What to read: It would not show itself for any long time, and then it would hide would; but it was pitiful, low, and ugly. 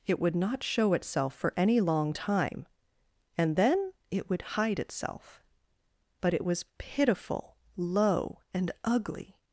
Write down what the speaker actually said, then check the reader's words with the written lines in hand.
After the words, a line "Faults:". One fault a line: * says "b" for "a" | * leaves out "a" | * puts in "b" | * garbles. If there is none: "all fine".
It would not show itself for any long time, and then it would hide itself; but it was pitiful, low, and ugly.
Faults:
* says "itself" for "would"